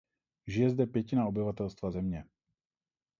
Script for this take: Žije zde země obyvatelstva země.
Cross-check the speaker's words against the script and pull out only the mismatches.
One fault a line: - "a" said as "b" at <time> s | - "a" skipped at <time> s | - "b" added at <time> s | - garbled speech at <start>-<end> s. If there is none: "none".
- "země" said as "pětina" at 0.8 s